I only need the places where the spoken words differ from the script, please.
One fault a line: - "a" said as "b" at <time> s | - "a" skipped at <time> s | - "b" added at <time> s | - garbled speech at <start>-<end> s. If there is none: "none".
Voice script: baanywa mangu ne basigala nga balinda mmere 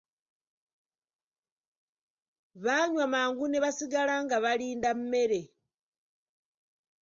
none